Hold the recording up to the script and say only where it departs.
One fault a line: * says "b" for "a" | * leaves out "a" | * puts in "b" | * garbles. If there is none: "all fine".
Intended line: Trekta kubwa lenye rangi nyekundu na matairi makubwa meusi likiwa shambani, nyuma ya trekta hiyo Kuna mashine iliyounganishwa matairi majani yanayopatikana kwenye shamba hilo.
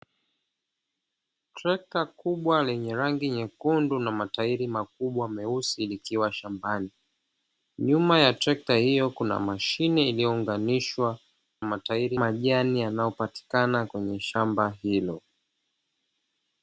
all fine